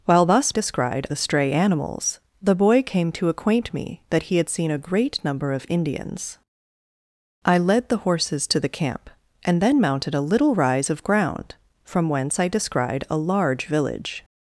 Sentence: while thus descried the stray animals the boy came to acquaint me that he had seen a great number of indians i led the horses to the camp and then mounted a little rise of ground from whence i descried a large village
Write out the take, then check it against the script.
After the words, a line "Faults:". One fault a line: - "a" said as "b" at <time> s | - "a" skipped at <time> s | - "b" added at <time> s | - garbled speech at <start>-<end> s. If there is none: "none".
while thus descried the stray animals the boy came to acquaint me that he had seen a great number of indians i led the horses to the camp and then mounted a little rise of ground from whence i descried a large village
Faults:
none